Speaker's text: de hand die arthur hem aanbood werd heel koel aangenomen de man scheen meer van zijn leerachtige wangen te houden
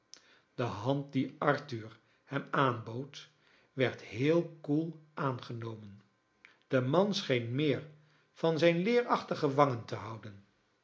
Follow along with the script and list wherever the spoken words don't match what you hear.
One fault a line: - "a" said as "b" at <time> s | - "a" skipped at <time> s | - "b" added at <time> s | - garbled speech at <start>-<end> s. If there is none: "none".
none